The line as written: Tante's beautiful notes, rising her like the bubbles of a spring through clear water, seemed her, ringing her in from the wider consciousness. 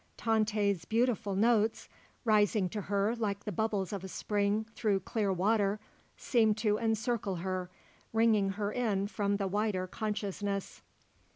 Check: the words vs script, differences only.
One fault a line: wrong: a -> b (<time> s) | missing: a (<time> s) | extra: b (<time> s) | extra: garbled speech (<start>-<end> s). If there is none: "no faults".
extra: to (2.7 s)
extra: to encircle (6.6 s)